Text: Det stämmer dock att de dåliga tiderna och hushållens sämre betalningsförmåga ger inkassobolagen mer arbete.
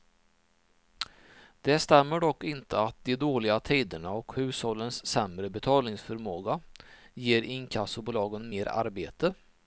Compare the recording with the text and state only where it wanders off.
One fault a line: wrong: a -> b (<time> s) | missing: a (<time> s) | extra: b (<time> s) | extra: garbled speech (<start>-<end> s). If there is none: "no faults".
extra: inte (2.4 s)